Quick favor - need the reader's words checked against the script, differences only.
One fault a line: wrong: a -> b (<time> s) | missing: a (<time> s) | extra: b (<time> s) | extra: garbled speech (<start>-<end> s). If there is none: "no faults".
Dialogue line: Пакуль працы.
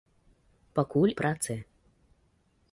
no faults